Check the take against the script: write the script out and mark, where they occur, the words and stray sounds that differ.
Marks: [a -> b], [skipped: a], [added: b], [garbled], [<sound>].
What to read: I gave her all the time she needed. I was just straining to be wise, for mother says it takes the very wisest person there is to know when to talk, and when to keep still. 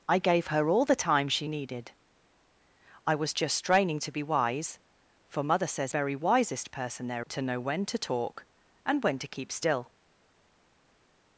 I gave her all the time she needed. I was just straining to be wise, for mother says [skipped: it takes the] very wisest person there [skipped: is] to know when to talk, and when to keep still.